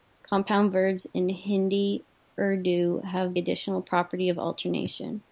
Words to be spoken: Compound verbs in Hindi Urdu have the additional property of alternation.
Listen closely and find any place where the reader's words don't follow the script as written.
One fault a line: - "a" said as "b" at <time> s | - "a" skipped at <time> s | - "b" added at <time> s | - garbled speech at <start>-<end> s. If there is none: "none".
- "the" skipped at 3.4 s